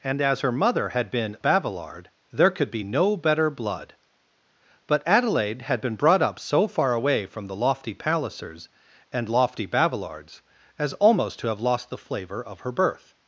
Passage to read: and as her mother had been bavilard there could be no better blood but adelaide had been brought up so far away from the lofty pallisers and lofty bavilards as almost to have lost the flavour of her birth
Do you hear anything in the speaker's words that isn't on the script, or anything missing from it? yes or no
no